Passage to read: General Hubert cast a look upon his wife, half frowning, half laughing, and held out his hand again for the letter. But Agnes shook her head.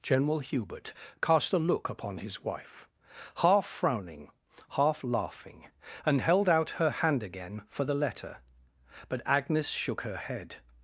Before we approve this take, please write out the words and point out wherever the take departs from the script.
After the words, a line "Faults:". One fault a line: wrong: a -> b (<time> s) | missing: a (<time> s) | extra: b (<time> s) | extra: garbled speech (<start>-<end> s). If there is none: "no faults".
General Hubert cast a look upon his wife, half frowning, half laughing, and held out her hand again for the letter. But Agnes shook her head.
Faults:
wrong: his -> her (6.7 s)